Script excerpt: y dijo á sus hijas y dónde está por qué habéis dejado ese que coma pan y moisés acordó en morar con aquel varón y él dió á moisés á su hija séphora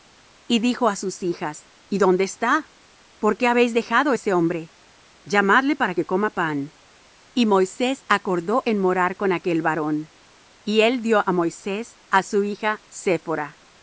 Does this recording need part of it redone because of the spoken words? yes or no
yes